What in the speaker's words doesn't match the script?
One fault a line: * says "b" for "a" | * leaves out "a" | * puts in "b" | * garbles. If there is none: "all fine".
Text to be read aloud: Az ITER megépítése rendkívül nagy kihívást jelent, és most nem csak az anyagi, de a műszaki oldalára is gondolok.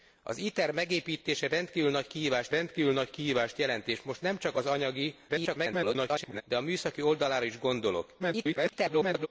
* puts in "rendkívül nagy kihívást"
* garbles
* garbles